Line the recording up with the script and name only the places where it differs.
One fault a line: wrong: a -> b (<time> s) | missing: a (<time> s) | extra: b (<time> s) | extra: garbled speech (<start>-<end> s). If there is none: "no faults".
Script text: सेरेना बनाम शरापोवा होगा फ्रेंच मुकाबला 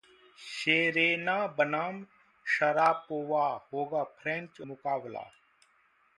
no faults